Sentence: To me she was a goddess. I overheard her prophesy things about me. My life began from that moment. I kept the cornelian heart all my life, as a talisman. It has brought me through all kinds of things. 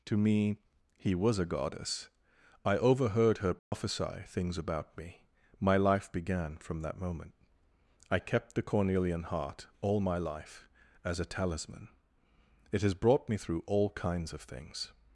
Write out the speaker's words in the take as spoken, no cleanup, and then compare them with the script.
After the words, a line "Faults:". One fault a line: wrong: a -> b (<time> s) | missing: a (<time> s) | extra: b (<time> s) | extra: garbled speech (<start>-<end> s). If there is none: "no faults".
To me he was a goddess. I overheard her prophesy things about me. My life began from that moment. I kept the cornelian heart all my life, as a talisman. It has brought me through all kinds of things.
Faults:
wrong: she -> he (1.0 s)